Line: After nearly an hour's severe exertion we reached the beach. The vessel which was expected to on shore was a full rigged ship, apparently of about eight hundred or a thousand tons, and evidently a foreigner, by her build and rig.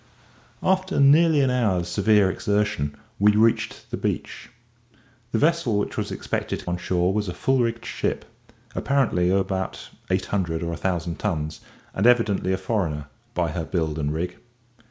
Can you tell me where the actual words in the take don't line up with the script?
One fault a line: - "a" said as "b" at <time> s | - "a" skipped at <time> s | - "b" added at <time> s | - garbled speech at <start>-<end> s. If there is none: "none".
none